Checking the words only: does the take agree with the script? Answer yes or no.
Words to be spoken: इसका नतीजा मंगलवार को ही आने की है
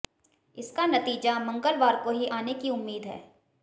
no